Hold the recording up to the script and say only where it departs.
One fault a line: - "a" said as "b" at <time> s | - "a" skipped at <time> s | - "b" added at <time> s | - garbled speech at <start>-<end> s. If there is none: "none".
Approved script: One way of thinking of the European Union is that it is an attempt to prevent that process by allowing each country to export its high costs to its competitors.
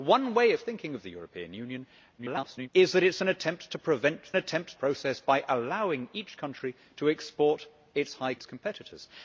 - garbled speech at 2.2-2.7 s
- "that" said as "attempt" at 4.4 s
- "costs to" skipped at 8.3 s